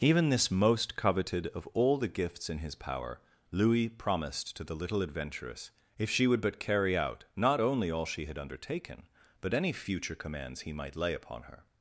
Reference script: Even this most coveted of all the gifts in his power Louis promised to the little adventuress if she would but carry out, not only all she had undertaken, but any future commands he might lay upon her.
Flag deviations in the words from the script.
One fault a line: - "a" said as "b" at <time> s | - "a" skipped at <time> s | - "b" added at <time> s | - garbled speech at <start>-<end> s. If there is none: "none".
none